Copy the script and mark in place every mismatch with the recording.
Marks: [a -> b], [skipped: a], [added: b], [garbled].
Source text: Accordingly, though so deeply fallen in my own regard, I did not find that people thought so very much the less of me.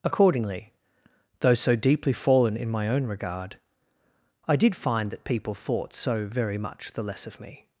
Accordingly, though so deeply fallen in my own regard, I did [skipped: not] find that people thought so very much the less of me.